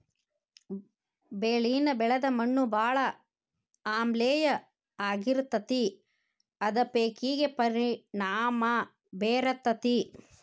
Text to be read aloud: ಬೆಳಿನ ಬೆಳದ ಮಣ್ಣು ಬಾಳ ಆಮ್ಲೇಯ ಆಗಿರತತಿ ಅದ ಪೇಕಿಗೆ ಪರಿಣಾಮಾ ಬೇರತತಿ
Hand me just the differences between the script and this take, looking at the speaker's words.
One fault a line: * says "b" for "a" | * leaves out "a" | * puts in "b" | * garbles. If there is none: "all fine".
all fine